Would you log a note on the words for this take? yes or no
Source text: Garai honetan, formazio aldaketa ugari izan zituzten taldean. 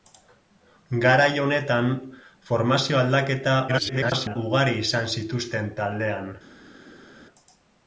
yes